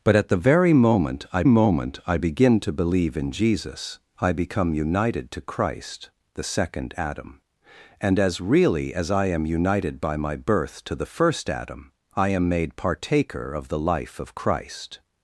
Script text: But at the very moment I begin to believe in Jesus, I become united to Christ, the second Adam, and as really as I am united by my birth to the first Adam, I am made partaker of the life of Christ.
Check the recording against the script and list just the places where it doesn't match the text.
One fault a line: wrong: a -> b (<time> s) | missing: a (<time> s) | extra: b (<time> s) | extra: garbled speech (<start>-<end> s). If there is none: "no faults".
extra: moment I (1.4 s)